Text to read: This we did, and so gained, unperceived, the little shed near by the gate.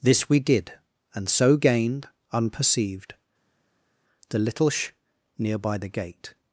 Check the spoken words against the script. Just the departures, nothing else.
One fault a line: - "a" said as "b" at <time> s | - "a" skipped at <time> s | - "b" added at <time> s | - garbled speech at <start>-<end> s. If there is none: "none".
- "shed" said as "sh" at 4.7 s